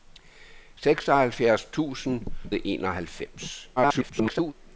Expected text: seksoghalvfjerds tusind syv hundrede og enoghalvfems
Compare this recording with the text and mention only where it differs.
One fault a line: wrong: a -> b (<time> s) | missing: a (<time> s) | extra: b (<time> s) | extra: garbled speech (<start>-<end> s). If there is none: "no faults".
missing: syv hundrede (2.2 s)
extra: garbled speech (3.8-4.5 s)